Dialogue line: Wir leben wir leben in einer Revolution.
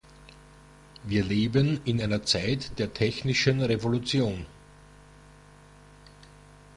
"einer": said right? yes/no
no